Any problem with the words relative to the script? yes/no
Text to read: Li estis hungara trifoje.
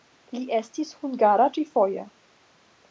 no